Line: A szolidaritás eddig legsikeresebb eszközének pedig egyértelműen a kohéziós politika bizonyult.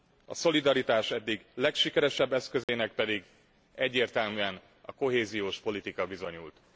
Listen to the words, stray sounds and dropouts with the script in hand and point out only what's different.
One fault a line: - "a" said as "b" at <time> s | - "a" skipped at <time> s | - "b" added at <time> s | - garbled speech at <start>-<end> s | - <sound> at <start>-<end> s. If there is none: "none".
- dropout at 2.6-2.7 s